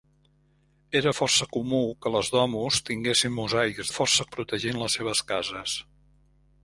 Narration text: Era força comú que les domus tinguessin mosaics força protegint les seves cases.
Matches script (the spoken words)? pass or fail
pass